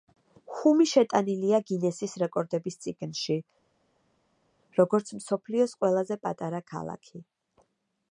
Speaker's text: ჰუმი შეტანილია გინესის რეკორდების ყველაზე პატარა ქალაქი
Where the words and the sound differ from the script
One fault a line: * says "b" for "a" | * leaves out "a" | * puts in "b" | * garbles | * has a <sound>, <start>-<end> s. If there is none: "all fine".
* puts in "წიგნში როგორც მსოფლიოს"